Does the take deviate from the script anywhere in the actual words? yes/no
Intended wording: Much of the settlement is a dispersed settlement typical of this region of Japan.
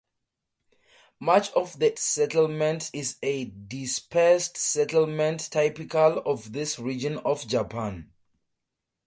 no